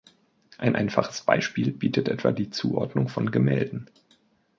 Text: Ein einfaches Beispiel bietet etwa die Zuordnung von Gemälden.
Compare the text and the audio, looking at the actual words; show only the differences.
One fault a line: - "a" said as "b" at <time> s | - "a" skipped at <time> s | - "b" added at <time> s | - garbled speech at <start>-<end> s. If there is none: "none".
none